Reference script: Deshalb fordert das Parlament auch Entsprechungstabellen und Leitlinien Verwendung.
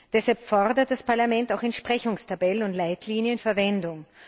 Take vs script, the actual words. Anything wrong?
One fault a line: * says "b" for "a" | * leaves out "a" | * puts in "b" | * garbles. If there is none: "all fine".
all fine